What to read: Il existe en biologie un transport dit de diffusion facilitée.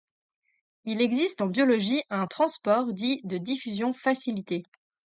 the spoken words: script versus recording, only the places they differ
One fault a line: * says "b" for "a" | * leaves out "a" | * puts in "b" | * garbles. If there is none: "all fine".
all fine